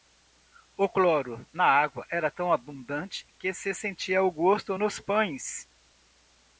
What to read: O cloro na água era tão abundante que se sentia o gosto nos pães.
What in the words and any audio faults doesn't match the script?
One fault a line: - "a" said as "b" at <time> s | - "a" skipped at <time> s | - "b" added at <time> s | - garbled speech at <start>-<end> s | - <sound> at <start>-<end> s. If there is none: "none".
none